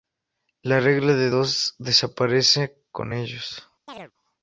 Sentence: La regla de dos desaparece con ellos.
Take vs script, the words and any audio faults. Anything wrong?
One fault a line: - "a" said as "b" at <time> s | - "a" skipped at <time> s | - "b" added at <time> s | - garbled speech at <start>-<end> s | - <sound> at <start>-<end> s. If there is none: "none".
- chirp at 3.9-4.1 s